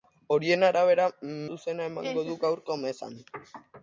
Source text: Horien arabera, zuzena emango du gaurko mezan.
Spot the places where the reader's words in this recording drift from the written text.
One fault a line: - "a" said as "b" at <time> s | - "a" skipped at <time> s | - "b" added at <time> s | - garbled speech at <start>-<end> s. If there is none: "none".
none